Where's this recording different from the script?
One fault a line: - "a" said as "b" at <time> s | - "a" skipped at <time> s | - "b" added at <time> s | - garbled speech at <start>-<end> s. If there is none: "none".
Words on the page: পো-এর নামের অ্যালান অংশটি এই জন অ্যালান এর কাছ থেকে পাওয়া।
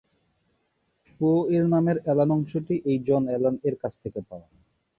none